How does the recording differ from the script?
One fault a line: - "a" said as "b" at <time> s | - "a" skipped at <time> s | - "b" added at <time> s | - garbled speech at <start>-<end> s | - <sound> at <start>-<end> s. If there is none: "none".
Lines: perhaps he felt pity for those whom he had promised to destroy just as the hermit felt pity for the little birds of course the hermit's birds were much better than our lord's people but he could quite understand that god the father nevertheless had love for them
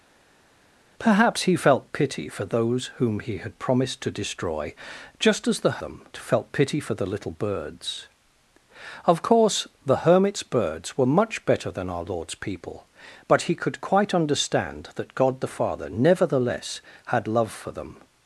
- "hermit" said as "them" at 5.8 s